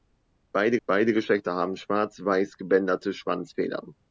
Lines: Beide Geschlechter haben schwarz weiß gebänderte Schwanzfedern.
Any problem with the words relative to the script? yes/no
yes